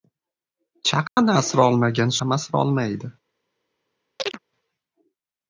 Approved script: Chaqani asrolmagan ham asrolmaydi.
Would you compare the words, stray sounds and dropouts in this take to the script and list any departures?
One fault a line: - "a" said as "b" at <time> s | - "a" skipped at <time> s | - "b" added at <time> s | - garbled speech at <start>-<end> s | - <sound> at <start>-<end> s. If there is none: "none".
- dropout at 1.1-1.2 s
- chirp at 4.2-4.4 s